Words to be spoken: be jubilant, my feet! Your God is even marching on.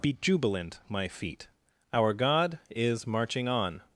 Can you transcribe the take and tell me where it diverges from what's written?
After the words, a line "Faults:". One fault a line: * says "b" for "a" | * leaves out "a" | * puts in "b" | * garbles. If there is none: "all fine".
be jubilant, my feet! Our God is marching on.
Faults:
* says "Our" for "Your"
* leaves out "even"